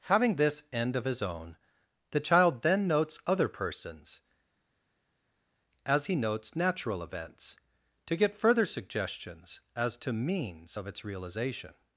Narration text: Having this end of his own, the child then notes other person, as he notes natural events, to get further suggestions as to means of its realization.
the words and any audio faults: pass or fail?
fail